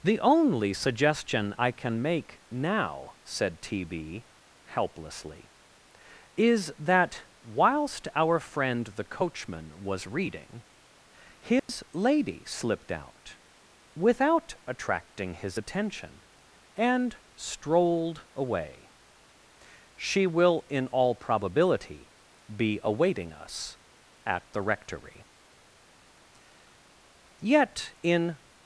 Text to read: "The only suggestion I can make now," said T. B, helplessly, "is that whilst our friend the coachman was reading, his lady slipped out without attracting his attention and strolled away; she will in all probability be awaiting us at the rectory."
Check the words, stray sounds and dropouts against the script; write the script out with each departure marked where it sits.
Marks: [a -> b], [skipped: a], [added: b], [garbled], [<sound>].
"The only suggestion I can make now," said T. B, helplessly, "is that whilst our friend the coachman was reading, his [dropout] lady slipped out without attracting his attention and strolled away; she will in all probability be awaiting us at the rectory." [added: Yet in]